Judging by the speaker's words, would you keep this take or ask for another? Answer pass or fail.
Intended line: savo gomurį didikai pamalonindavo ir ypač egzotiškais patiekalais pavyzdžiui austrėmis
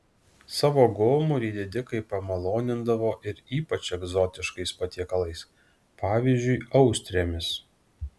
pass